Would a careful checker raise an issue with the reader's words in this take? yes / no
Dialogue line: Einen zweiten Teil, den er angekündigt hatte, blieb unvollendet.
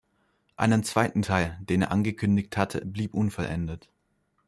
no